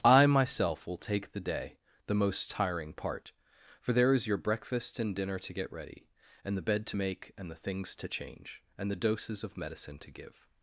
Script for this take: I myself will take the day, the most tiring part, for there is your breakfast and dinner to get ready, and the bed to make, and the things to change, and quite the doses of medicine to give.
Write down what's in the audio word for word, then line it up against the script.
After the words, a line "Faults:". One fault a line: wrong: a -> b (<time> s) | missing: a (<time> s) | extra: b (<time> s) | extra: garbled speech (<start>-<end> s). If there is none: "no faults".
I myself will take the day, the most tiring part, for there is your breakfast and dinner to get ready, and the bed to make, and the things to change, and the doses of medicine to give.
Faults:
missing: quite (8.9 s)